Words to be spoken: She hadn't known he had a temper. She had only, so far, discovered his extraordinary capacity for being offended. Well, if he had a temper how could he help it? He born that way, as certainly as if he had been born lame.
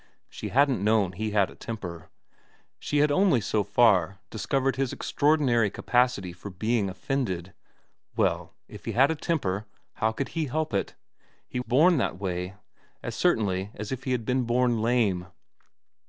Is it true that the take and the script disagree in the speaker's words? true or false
false